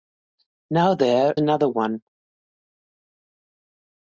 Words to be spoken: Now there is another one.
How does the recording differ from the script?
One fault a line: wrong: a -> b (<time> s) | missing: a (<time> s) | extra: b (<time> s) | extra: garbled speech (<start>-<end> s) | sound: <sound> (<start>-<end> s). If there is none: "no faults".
missing: is (1.4 s)